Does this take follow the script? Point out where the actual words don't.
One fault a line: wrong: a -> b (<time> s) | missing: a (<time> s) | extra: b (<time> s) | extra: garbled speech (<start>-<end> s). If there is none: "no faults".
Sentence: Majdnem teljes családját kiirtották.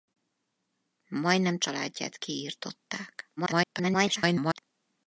missing: teljes (1.6 s)
extra: garbled speech (3.4-4.6 s)